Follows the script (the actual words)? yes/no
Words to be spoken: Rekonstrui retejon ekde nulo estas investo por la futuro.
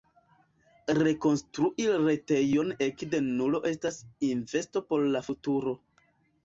yes